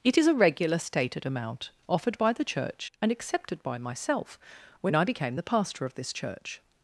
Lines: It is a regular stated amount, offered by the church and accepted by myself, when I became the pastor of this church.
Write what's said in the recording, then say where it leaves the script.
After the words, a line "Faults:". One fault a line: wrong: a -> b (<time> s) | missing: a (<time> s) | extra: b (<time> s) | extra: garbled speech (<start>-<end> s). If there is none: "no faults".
It is a regular stated amount, offered by the church and accepted by myself, when I became the pastor of this church.
Faults:
no faults